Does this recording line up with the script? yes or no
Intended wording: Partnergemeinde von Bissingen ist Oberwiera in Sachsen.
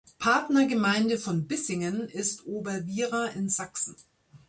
yes